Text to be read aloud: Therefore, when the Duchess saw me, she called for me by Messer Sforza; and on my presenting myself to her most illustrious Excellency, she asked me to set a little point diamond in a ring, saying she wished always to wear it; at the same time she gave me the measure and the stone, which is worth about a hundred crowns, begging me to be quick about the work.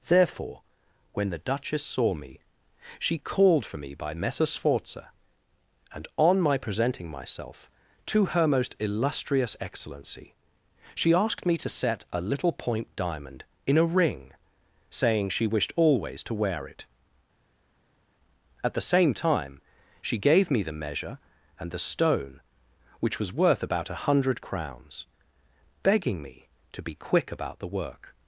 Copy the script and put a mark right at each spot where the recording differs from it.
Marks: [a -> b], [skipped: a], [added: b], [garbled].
Therefore, when the Duchess saw me, she called for me by Messer Sforza; and on my presenting myself to her most illustrious Excellency, she asked me to set a little point diamond in a ring, saying she wished always to wear it; at the same time she gave me the measure and the stone, which [is -> was] worth about a hundred crowns, begging me to be quick about the work.